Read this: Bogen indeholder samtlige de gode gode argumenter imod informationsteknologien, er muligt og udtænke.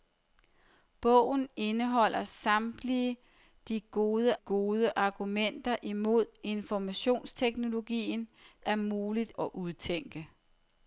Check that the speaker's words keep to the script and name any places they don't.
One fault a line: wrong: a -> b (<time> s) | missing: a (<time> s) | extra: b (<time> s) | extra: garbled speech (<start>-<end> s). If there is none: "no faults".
no faults